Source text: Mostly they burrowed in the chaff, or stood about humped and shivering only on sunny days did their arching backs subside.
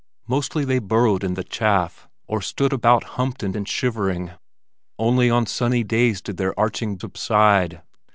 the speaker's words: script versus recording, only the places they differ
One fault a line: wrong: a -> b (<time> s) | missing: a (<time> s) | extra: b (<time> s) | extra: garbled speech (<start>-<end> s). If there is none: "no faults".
extra: and (3.5 s)
missing: backs (7.0 s)